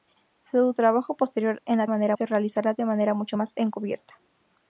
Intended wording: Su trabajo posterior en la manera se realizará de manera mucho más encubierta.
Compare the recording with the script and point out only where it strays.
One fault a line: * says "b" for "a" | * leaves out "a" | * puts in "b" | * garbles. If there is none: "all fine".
all fine